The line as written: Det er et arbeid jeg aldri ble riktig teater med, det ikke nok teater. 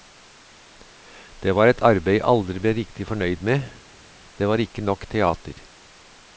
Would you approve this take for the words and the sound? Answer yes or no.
no